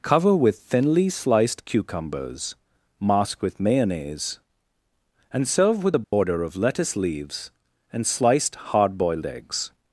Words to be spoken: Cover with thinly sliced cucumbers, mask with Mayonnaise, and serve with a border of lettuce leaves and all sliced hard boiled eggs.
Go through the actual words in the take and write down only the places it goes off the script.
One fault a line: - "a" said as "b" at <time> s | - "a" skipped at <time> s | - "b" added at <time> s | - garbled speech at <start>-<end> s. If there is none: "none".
- "all" skipped at 8.1 s